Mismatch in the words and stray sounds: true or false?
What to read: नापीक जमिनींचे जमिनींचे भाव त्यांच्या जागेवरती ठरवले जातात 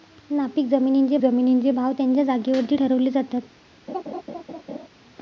true